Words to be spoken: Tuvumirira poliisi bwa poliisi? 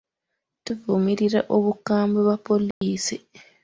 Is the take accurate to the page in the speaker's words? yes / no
no